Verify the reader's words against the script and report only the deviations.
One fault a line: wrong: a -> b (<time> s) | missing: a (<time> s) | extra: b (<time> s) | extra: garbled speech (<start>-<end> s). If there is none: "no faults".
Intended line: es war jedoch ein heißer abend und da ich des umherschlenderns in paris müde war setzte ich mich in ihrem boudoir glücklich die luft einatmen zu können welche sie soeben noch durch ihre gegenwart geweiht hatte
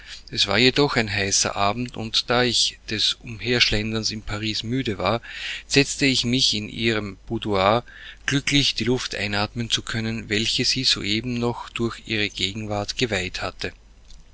no faults